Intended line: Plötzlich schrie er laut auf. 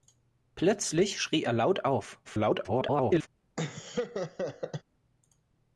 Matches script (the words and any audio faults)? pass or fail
fail